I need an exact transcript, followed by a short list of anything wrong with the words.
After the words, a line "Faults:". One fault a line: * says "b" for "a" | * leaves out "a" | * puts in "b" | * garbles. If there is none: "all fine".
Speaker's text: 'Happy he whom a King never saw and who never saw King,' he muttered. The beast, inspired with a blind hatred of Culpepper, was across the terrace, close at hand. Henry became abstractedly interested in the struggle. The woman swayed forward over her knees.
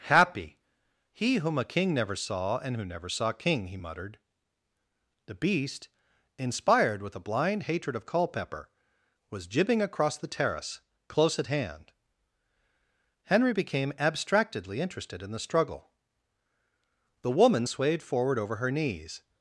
'Happy he whom a King never saw and who never saw King,' he muttered. The beast, inspired with a blind hatred of Culpepper, was jibbing across the terrace, close at hand. Henry became abstractedly interested in the struggle. The woman swayed forward over her knees.
Faults:
* puts in "jibbing"